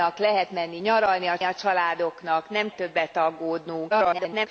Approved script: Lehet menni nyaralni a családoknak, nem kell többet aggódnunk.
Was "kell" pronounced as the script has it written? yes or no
no